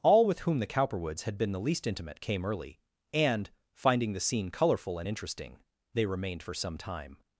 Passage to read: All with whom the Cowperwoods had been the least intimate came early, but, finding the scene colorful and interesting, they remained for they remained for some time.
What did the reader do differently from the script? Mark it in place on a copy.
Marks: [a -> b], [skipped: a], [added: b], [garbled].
All with whom the Cowperwoods had been the least intimate came early, [but, -> and] finding the scene colorful and interesting, they remained for [skipped: they remained for] some time.